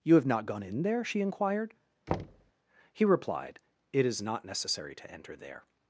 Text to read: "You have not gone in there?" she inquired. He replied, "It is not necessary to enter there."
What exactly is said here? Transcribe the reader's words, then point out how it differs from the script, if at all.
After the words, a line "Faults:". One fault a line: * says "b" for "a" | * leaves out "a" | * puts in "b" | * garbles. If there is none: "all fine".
"You have not gone in there?" she inquired. He replied, "It is not necessary to enter there."
Faults:
all fine